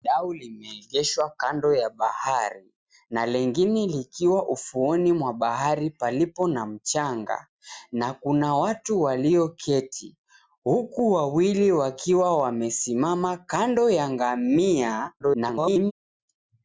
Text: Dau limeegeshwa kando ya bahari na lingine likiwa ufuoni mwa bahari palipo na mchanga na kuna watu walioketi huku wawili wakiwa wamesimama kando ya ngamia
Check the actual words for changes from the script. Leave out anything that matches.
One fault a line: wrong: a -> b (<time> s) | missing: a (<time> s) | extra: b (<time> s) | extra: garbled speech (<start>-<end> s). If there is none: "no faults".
extra: garbled speech (15.2-15.9 s)